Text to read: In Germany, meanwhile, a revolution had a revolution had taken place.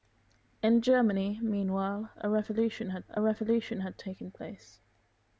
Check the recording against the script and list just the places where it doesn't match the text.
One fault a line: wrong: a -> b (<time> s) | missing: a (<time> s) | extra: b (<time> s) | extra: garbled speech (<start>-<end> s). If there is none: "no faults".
no faults